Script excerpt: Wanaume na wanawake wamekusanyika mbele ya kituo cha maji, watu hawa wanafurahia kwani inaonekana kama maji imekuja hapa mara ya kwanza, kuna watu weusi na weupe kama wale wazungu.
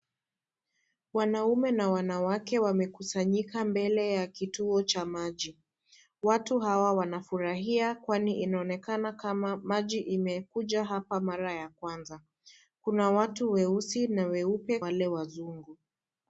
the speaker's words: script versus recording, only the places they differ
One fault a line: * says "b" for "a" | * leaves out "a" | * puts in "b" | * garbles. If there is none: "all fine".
* leaves out "kama"